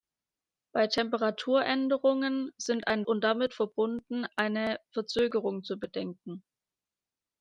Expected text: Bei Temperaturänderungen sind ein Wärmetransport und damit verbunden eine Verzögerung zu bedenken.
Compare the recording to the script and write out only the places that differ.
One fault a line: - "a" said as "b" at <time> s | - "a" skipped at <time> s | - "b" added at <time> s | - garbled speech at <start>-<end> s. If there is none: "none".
- "Wärmetransport" skipped at 3.1 s